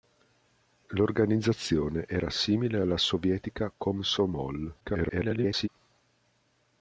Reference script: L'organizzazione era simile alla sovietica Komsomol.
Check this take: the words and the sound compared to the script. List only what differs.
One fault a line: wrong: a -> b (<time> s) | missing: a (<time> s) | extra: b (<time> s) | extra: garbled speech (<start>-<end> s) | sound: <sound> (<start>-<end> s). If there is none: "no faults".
extra: garbled speech (4.8-5.7 s)